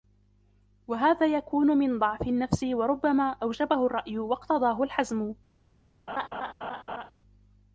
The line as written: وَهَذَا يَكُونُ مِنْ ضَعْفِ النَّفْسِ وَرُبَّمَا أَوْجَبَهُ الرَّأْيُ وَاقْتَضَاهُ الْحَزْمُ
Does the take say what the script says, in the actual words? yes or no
yes